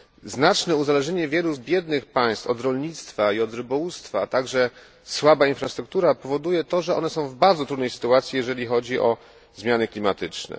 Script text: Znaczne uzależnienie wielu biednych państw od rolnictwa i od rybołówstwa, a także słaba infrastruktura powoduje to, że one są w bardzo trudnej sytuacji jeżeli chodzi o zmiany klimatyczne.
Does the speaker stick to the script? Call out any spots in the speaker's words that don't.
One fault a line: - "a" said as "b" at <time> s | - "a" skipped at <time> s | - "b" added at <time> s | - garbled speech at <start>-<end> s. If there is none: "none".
none